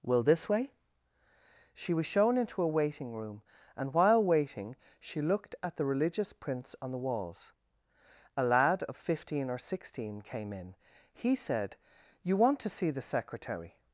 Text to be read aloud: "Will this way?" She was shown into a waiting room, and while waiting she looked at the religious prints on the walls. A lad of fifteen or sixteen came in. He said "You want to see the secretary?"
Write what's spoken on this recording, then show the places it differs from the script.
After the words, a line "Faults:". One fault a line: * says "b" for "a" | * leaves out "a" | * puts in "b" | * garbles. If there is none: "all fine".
"Will this way?" She was shown into a waiting room, and while waiting she looked at the religious prints on the walls. A lad of fifteen or sixteen came in. He said "You want to see the secretary?"
Faults:
all fine